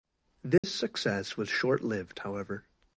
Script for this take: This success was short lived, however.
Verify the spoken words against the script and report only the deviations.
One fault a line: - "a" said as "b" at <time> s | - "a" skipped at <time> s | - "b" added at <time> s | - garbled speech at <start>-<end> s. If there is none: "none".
none